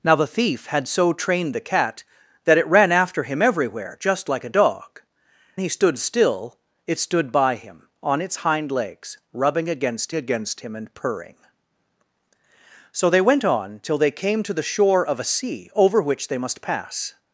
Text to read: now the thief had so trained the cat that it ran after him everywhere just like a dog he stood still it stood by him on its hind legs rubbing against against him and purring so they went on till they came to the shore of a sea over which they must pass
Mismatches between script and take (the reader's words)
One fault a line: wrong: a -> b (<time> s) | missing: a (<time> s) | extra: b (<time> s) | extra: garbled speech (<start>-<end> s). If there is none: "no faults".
no faults